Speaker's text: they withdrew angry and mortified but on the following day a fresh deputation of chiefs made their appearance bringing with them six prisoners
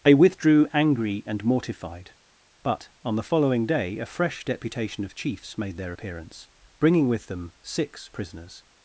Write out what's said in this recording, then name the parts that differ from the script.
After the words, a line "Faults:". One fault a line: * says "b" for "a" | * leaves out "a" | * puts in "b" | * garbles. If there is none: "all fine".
they withdrew angry and mortified but on the following day a fresh deputation of chiefs made their appearance bringing with them six prisoners
Faults:
all fine